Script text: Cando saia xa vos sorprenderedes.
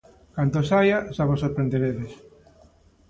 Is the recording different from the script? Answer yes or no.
no